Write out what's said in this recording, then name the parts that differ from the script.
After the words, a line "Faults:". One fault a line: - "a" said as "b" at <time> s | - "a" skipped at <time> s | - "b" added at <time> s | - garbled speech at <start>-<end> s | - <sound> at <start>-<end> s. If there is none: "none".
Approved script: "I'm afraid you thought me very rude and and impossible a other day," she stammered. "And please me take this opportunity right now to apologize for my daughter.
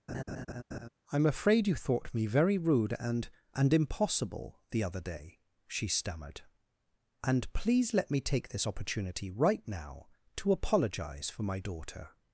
"I'm afraid you thought me very rude and and impossible the other day," she stammered. "And please let me take this opportunity right now to apologize for my daughter.
Faults:
- laugh at 0.1-0.9 s
- "a" said as "the" at 4.7 s
- "let" added at 7.9 s